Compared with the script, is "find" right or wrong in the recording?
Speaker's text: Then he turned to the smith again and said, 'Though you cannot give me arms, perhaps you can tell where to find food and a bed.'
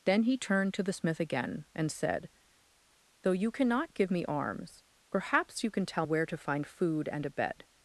right